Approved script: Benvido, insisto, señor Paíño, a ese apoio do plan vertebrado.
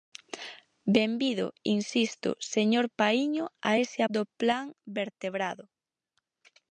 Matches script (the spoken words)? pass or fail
fail